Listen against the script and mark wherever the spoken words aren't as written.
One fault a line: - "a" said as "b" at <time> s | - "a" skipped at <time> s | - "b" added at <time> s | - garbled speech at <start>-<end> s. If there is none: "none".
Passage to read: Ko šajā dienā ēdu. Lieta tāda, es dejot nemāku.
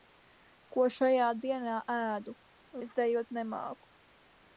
- "Lieta tāda" skipped at 2.4 s